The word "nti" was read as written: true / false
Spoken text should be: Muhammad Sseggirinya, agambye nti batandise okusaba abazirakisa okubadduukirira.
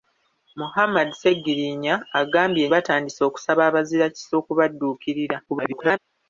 false